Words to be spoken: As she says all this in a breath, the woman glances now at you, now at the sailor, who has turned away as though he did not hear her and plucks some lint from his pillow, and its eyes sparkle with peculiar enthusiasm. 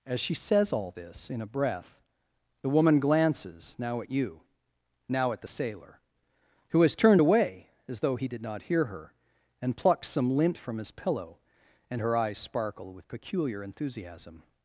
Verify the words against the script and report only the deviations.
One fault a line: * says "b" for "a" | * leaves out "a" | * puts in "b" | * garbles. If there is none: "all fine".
* says "her" for "its"